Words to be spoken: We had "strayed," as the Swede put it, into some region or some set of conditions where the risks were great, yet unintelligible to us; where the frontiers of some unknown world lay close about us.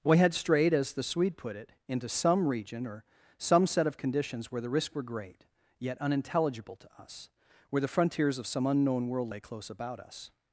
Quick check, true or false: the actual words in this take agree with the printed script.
true